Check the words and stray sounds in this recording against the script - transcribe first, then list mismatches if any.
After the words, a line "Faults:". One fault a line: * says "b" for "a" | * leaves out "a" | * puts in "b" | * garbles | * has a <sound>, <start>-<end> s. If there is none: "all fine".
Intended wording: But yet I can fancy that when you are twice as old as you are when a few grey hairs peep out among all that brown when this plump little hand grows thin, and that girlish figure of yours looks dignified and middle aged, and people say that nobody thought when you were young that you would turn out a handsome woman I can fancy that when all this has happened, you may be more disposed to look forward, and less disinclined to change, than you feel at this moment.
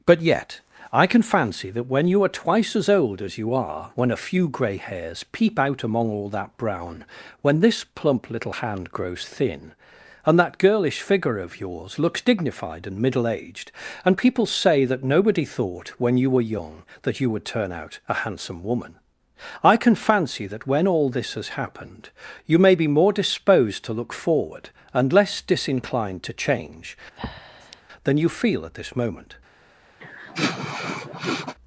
But yet I can fancy that when you are twice as old as you are when a few grey hairs peep out among all that brown when this plump little hand grows thin, and that girlish figure of yours looks dignified and middle aged, and people say that nobody thought when you were young that you would turn out a handsome woman I can fancy that when all this has happened, you may be more disposed to look forward, and less disinclined to change, than you feel at this moment.
Faults:
* has a breath, 27.2-27.8 s
* has a sniff, 30.0-31.5 s